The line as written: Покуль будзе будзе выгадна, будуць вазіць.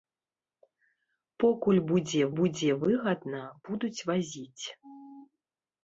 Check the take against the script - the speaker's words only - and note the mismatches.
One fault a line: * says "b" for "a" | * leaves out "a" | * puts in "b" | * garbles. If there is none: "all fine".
all fine